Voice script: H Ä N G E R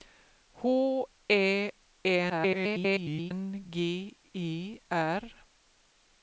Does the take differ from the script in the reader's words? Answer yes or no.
yes